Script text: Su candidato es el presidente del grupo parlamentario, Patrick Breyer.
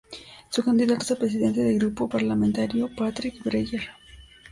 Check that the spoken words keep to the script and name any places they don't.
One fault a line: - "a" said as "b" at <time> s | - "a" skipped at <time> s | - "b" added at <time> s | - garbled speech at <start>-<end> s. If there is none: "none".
none